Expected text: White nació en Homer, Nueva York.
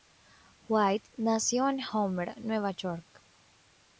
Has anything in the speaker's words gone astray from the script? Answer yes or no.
no